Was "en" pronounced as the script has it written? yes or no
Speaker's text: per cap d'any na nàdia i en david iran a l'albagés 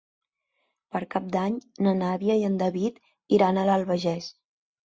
yes